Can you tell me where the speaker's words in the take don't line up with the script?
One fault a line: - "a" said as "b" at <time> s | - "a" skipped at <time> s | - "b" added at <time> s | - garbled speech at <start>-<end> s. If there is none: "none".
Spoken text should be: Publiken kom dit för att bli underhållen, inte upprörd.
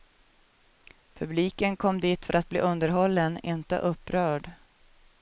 none